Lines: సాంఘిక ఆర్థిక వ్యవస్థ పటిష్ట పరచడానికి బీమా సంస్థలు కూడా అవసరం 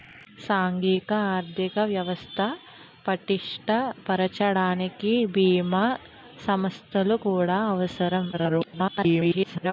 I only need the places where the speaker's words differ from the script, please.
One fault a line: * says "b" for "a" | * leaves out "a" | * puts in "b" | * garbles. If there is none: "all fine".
* garbles